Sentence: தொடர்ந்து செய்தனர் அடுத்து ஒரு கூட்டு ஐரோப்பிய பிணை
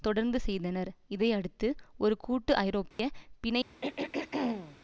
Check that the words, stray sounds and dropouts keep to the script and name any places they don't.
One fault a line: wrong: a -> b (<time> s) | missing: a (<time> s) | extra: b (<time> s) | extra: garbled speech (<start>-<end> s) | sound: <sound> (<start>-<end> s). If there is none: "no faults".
extra: இதை (1.1 s)
sound: dropout (2.9-3.0 s)
sound: throat clearing (3.8-4.8 s)